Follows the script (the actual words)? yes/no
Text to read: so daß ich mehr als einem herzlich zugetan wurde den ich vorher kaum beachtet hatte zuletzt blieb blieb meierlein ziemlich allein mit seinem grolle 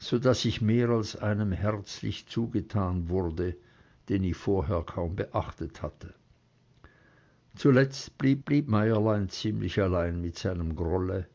yes